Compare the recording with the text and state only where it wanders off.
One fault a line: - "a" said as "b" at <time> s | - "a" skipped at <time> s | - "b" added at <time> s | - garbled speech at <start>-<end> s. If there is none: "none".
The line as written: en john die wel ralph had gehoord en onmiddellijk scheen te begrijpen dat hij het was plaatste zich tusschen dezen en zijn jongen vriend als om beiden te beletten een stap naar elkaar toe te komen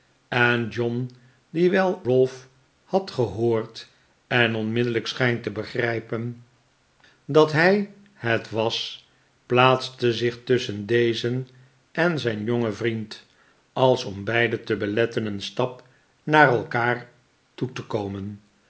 none